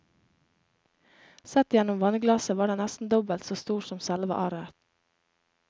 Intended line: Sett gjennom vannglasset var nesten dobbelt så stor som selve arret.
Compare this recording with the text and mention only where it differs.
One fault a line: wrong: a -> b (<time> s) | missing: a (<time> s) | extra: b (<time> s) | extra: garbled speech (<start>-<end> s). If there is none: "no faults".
extra: den (2.7 s)